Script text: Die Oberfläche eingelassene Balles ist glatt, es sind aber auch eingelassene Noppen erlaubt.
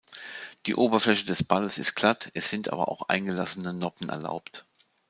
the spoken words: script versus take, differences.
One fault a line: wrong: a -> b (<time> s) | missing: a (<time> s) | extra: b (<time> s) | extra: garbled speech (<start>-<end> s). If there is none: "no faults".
wrong: eingelassene -> des (1.2 s)